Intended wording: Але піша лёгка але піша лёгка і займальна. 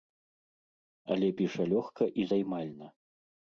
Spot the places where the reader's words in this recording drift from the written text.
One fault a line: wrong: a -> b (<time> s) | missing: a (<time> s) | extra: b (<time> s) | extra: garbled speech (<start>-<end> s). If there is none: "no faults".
missing: але піша лёгка (2.0 s)